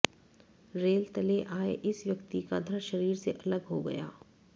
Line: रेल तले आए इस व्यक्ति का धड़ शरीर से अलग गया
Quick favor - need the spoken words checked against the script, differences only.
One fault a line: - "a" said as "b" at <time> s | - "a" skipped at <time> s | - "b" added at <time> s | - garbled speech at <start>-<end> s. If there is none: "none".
- "हो" added at 3.7 s